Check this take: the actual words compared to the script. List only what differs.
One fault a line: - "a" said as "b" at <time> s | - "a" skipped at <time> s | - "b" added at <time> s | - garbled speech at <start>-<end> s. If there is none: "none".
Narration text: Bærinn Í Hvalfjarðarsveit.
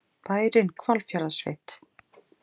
none